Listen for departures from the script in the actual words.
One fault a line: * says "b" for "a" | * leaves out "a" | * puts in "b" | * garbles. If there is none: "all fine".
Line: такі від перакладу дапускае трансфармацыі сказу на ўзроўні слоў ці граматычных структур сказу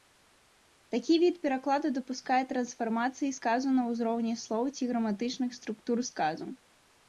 all fine